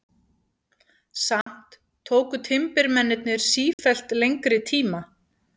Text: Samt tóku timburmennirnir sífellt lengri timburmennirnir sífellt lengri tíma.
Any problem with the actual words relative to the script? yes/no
yes